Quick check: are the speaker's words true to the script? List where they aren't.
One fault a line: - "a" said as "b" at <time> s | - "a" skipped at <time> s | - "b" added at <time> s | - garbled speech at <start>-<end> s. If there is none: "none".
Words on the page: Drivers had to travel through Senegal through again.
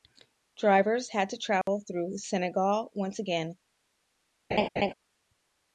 - "through" said as "once" at 3.0 s